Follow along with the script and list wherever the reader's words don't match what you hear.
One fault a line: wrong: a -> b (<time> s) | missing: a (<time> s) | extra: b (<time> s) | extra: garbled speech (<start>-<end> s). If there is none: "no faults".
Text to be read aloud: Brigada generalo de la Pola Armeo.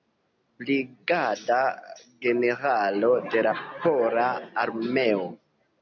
no faults